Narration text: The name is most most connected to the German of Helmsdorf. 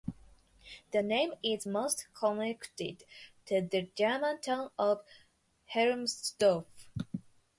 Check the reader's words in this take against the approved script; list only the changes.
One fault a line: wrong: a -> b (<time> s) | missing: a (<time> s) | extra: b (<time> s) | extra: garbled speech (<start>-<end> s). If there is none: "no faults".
missing: most (2.1 s)
extra: town (4.4 s)